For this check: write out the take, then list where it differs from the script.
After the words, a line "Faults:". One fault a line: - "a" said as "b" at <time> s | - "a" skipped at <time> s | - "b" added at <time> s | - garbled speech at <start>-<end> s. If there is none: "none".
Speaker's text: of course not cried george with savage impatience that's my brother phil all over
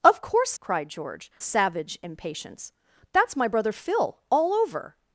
of course cried george savage impatience that's my brother phil all over
Faults:
- "not" skipped at 0.6 s
- "with" skipped at 1.3 s